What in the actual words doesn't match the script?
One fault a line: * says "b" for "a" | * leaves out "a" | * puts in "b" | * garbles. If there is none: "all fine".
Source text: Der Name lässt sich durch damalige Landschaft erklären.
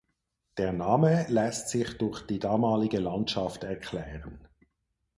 * puts in "die"